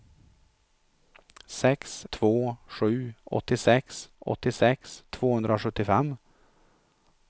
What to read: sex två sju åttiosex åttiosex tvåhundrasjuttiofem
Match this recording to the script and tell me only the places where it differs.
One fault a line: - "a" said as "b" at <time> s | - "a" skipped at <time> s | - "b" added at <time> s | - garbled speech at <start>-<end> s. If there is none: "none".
none